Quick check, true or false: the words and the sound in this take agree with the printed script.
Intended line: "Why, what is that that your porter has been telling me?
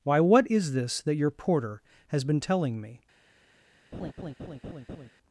false